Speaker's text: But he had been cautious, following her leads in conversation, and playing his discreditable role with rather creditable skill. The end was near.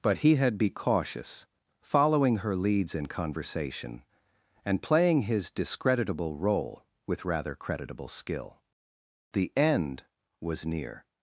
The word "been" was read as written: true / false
false